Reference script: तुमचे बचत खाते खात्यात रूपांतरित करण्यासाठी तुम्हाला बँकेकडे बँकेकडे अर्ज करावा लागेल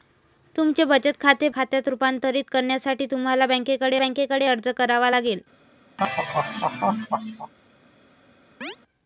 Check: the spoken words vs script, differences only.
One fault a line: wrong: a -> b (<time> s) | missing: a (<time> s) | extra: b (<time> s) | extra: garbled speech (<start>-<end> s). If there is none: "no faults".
no faults